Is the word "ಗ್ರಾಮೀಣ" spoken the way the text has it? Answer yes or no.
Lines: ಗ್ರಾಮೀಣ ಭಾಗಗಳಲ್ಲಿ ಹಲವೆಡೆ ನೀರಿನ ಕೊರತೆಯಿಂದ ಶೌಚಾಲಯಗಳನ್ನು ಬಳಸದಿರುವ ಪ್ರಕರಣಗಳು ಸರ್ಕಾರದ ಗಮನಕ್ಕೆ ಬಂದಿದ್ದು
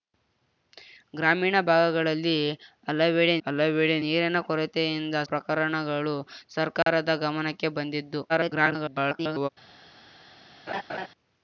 yes